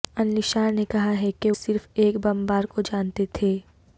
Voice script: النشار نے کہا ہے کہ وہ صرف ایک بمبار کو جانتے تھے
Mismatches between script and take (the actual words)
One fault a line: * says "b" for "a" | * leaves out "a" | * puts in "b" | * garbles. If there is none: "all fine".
* leaves out "وہ"